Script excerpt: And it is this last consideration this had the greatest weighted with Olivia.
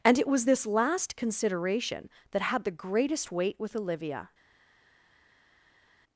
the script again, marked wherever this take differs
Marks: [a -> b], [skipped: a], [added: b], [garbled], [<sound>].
And it [is -> was] this last consideration [this -> that] had the greatest [weighted -> weight] with Olivia.